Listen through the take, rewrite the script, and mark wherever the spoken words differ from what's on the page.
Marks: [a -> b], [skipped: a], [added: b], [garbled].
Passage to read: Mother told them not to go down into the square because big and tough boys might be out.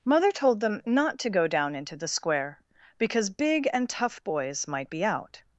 Mother told them not to go down into the square because big and tough boys might be out.